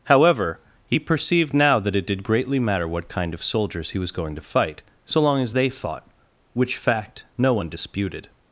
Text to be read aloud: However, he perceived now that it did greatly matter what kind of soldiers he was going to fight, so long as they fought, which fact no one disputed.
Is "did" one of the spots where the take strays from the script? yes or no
no